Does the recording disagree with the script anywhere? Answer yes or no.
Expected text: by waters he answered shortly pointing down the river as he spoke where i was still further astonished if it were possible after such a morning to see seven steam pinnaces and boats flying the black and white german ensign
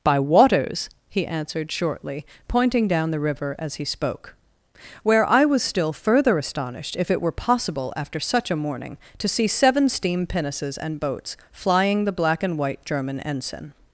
no